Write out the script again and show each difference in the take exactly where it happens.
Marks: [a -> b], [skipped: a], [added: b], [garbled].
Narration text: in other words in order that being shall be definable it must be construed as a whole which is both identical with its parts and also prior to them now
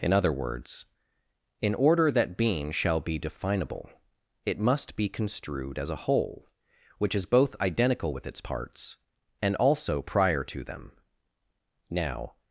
in other words in order that being shall be definable it must be construed as a whole which is both identical with its parts and also prior to them now